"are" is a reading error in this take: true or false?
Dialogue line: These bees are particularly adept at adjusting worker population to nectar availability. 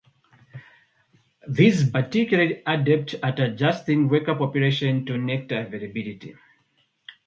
true